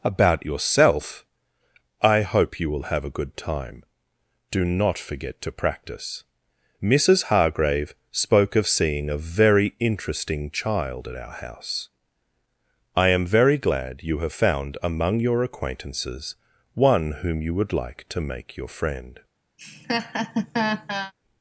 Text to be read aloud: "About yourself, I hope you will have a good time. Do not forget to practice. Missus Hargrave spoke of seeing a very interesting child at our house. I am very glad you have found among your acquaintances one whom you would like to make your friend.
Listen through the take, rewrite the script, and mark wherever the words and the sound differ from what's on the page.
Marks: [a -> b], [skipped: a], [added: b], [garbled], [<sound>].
"About yourself, I hope you will have a good time. Do not forget to practice. Missus Hargrave spoke of seeing a very interesting child at our house. I am very glad you have found among your acquaintances one whom you would like to make your friend. [laugh]